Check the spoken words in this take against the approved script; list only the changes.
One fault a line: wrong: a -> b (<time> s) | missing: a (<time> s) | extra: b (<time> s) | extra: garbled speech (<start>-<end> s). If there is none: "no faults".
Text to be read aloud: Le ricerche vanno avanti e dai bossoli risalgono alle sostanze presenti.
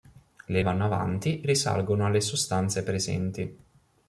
missing: ricerche (0.6 s)
missing: e dai bossoli (1.4 s)